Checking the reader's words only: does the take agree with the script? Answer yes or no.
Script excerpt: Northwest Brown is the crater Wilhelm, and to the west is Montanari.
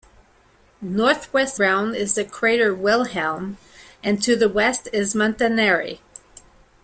yes